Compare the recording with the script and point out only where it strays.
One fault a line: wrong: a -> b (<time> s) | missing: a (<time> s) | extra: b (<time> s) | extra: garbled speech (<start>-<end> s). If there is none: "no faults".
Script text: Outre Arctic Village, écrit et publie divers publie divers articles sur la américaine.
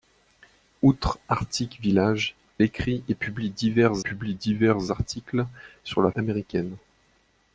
no faults